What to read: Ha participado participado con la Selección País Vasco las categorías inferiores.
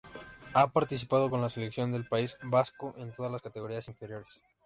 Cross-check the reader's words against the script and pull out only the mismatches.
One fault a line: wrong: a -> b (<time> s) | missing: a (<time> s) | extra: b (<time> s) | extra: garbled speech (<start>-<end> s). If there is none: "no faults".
missing: participado (1.3 s)
extra: del (1.9 s)
extra: en todas (3.0 s)